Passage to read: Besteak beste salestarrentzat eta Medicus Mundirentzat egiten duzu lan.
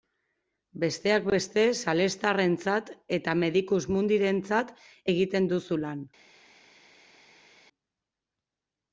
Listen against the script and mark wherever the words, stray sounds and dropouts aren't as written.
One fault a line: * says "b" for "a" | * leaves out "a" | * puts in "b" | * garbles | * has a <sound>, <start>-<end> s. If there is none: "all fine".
all fine